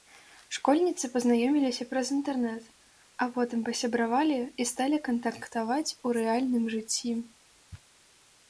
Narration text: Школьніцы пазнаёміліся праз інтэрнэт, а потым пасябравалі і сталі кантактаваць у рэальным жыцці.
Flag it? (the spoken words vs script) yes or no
no